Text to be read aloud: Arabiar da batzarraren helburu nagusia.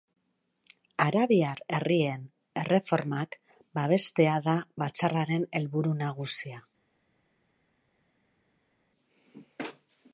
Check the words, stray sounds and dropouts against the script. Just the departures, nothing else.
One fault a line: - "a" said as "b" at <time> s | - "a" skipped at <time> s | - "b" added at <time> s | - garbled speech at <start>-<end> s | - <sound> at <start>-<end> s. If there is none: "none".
- "herrien erreformak babestea" added at 1.8 s